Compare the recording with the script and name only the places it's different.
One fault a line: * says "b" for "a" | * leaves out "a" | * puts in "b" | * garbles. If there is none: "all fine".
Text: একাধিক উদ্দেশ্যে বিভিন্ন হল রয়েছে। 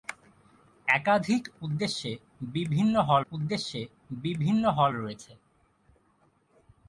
* puts in "উদ্দেশ্যে বিভিন্ন হল"